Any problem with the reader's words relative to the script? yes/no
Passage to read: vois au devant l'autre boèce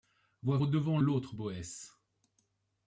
no